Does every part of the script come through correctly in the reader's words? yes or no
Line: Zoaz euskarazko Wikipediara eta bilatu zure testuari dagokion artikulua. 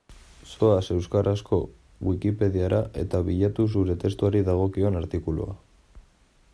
yes